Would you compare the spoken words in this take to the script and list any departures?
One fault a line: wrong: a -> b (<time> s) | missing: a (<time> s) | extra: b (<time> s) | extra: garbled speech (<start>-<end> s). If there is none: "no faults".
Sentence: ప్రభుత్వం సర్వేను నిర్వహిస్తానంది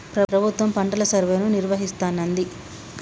extra: పంటల (0.7 s)